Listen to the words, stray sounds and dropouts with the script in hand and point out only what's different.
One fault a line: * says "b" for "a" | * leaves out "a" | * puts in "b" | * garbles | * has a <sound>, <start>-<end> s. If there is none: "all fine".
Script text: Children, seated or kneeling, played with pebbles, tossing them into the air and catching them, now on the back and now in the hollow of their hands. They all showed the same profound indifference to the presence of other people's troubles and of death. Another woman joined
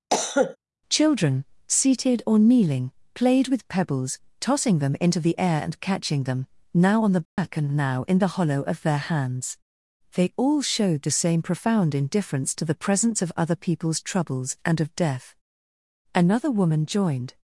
* has a cough, 0.1-0.6 s
* has a dropout, 7.3-7.4 s